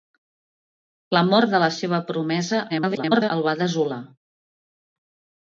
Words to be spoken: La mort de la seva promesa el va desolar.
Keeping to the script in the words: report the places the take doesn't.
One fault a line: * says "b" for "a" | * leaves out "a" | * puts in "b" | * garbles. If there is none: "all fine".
* garbles